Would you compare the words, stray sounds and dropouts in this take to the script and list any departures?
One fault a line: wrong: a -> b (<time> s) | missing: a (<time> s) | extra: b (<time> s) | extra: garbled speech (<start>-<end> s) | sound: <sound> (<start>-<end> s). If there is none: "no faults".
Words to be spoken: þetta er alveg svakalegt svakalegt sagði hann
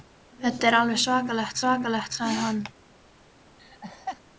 sound: laugh (3.6-4.2 s)